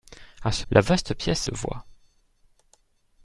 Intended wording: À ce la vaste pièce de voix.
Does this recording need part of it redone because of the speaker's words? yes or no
no